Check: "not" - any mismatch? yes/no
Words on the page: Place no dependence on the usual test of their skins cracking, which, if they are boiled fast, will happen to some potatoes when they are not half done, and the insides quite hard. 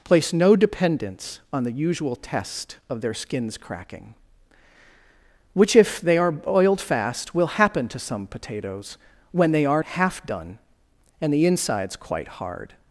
yes